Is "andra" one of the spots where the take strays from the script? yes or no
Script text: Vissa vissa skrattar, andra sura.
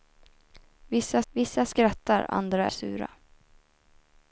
no